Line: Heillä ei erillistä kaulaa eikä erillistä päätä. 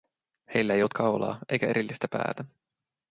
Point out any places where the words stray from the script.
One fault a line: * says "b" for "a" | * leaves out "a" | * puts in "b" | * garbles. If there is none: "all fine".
* says "ollut" for "erillistä"